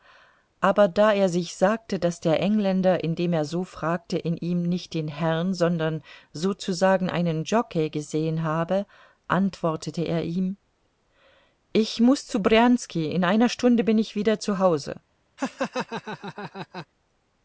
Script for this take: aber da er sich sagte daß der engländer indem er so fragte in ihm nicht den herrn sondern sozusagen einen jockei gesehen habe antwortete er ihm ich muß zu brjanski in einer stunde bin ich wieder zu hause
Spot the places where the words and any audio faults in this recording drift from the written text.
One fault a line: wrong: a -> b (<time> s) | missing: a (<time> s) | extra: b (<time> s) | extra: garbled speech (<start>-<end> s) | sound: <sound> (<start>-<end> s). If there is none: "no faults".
sound: laugh (15.4-16.9 s)